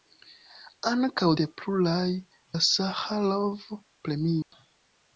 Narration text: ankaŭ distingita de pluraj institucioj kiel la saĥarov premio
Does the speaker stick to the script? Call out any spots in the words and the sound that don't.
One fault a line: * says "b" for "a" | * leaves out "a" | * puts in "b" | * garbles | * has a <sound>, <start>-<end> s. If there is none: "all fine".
* leaves out "distingita"
* leaves out "institucioj kiel"
* has a dropout, 4.4-4.5 s